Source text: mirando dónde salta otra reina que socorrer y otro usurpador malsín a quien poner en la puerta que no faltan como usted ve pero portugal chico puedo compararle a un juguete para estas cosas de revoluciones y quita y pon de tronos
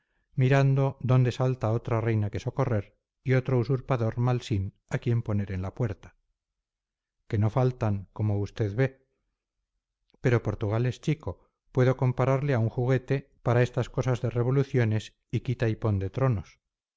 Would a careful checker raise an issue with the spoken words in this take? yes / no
yes